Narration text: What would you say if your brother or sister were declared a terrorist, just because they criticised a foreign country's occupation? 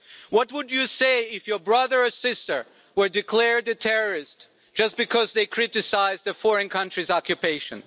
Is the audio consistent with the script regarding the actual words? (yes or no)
yes